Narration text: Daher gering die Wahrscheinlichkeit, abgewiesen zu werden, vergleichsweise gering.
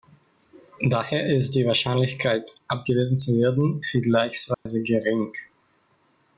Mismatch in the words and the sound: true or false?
true